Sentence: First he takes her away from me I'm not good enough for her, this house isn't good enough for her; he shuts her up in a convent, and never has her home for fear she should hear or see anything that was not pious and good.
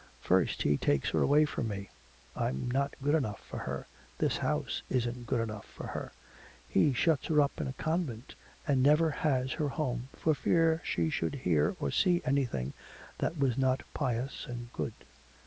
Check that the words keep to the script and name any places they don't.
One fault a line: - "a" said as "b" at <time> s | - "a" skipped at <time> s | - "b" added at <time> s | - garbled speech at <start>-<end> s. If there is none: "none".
none